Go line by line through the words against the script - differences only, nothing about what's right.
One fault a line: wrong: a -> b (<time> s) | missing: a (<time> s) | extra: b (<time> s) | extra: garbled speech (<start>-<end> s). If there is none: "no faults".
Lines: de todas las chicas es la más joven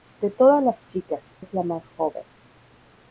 no faults